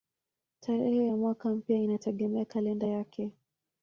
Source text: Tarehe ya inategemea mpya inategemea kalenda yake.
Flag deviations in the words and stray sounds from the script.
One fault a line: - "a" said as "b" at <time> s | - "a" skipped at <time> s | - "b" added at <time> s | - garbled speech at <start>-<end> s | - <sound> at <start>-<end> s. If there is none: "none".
- "inategemea" said as "mwaka" at 1.2 s